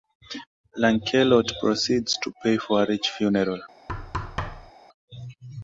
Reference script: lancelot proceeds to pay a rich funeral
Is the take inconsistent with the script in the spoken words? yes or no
yes